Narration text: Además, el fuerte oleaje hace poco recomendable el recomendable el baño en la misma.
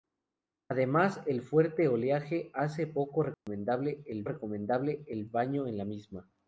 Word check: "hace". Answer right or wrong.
right